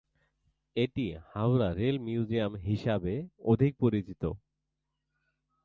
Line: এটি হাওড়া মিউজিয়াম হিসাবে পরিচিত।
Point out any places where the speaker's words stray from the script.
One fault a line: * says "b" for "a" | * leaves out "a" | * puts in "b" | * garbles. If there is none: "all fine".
* puts in "রেল"
* puts in "অধিক"